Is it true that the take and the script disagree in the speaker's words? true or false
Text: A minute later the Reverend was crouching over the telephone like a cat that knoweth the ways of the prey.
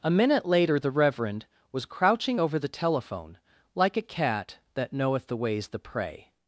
true